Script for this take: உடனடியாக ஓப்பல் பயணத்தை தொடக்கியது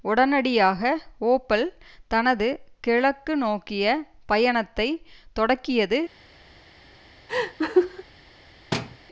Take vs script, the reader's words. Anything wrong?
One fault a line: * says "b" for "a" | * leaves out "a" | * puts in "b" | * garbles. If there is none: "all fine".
* puts in "தனது கிழக்கு நோக்கிய"